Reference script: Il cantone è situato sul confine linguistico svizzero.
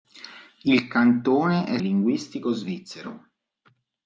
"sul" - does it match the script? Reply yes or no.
no